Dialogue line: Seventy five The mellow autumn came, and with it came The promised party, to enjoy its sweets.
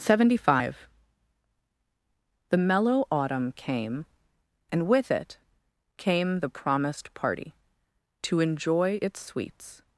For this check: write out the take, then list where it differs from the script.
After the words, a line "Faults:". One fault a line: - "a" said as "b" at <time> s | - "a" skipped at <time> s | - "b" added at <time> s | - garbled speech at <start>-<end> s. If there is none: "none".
Seventy five The mellow autumn came, and with it came The promised party, to enjoy its sweets.
Faults:
none